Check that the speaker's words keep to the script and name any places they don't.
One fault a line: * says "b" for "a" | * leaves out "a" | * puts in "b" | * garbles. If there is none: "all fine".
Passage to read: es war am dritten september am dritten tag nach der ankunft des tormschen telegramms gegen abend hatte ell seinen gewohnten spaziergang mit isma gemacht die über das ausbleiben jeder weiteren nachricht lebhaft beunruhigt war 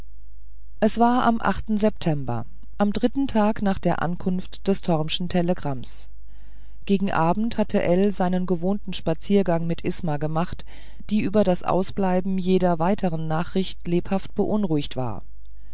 * says "achten" for "dritten"